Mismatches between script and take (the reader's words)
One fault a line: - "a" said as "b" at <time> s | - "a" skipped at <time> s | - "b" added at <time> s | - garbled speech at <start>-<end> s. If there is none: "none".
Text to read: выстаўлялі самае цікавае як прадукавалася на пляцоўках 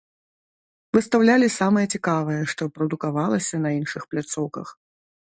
- "як" said as "што" at 2.5 s
- "іншых" added at 3.8 s